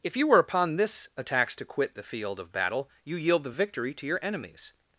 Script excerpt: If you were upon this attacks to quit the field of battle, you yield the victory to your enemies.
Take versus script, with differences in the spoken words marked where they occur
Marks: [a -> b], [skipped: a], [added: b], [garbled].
If you were upon this attacks to quit the field of battle, you yield the victory to your enemies.